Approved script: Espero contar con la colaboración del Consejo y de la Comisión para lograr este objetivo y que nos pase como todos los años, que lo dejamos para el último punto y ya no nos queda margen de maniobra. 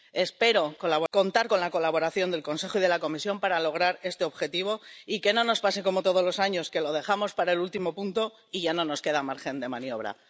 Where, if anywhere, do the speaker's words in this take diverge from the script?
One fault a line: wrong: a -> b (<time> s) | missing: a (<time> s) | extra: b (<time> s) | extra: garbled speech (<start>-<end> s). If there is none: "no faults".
extra: no (5.3 s)